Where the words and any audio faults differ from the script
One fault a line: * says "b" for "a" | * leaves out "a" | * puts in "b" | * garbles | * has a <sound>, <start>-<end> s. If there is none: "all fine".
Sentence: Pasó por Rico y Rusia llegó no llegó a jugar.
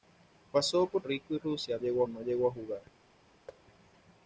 * has a thud, 3.5-3.6 s